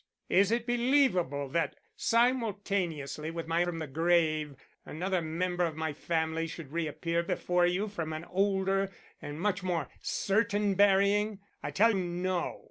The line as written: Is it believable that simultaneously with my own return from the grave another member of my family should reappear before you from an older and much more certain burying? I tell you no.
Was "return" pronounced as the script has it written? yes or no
no